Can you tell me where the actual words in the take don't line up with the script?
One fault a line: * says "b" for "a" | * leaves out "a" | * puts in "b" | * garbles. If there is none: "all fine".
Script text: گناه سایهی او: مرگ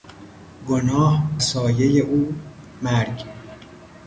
all fine